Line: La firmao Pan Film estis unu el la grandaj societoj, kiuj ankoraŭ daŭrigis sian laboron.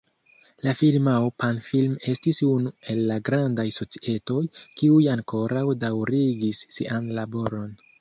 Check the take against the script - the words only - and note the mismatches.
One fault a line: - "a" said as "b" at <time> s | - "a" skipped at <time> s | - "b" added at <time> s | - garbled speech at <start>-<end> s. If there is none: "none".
none